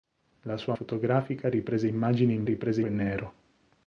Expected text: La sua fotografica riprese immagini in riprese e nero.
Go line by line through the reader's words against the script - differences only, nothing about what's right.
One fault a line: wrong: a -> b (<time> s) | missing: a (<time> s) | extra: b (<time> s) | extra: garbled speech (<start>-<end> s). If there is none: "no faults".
no faults